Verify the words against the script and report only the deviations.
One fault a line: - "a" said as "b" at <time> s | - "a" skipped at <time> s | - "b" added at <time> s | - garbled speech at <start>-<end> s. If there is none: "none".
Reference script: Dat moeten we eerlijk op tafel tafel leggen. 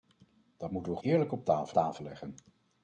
none